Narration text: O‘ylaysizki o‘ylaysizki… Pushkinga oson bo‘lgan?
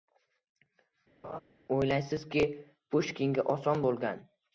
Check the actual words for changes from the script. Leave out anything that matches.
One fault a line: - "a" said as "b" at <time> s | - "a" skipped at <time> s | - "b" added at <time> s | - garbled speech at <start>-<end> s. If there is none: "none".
- "o‘ylaysizki" skipped at 2.4 s